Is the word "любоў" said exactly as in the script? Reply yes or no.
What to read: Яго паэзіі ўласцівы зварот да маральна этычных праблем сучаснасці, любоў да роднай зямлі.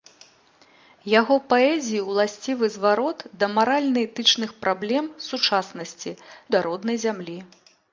no